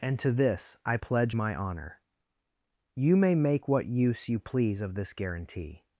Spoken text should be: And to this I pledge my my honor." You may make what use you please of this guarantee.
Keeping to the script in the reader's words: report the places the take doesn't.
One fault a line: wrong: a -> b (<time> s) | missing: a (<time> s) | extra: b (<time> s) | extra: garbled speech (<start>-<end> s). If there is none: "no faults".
missing: my (1.6 s)